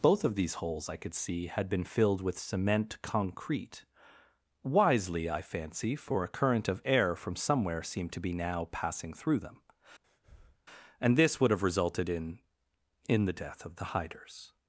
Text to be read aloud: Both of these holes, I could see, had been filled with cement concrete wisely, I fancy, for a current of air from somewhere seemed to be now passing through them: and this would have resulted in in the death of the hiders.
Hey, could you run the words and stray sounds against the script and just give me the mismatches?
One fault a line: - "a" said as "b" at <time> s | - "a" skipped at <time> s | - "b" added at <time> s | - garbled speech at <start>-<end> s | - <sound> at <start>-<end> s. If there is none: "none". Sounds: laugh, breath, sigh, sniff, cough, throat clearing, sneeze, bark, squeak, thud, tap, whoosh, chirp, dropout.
- breath at 10.0-10.6 s